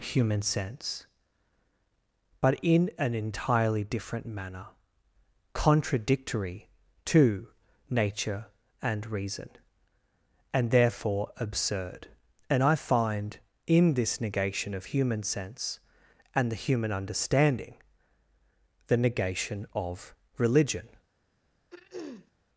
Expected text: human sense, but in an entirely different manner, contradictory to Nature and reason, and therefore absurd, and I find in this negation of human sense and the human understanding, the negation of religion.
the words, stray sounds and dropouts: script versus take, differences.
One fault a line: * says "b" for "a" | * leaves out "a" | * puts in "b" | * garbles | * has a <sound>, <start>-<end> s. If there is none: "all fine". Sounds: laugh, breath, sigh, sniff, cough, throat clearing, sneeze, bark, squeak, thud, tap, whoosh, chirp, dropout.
* has a throat clearing, 21.7-22.3 s